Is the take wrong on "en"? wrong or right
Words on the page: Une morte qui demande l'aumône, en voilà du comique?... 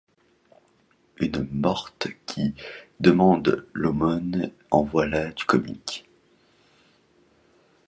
right